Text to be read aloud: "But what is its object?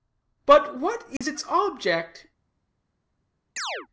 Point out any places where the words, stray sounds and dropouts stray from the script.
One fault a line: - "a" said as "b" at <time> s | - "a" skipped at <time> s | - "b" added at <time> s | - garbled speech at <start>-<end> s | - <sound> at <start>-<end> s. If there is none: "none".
- dropout at 1.2-1.2 s
- chirp at 3.6-3.9 s